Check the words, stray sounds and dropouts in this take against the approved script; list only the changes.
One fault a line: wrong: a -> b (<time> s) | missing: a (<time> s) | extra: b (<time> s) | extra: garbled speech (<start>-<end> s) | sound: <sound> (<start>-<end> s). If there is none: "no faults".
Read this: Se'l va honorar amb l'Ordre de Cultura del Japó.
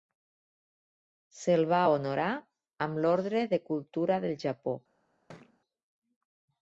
sound: thud (5.3-5.6 s)